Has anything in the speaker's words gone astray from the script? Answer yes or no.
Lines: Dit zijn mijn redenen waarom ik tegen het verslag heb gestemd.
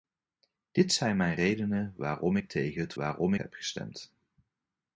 yes